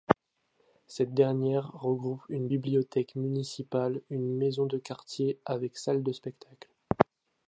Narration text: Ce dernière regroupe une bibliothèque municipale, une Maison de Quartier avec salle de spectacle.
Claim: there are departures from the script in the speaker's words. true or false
true